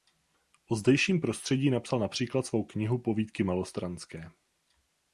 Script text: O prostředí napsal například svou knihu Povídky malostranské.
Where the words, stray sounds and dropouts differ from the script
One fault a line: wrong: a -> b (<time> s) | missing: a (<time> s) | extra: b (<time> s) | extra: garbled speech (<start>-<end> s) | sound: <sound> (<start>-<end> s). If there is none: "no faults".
extra: zdejším (0.8 s)